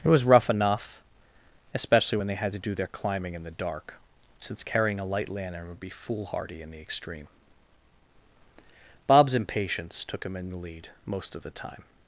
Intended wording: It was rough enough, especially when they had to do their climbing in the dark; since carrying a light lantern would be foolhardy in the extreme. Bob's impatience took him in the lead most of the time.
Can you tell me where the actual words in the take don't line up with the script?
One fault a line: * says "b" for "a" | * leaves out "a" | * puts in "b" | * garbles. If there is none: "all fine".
all fine